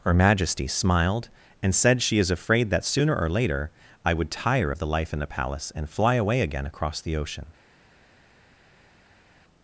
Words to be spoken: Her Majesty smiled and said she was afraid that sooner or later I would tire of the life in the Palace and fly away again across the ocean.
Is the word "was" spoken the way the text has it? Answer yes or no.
no